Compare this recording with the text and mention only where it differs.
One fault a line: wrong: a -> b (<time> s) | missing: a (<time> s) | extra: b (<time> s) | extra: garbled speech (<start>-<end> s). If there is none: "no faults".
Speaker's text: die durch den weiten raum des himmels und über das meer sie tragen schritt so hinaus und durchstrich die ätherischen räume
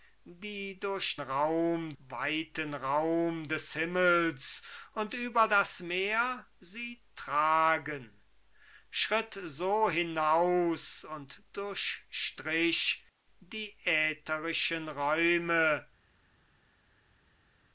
wrong: den -> raum (1.2 s)